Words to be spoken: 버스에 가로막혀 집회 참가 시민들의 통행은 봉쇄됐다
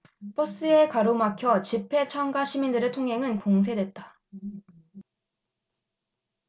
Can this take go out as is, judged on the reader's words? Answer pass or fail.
pass